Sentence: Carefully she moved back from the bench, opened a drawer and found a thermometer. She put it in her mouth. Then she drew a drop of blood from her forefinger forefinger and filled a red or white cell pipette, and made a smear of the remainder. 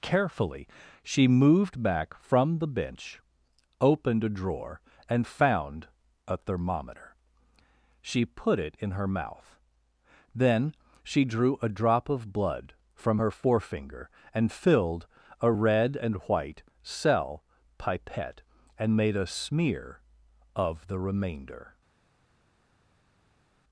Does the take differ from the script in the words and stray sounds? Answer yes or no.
yes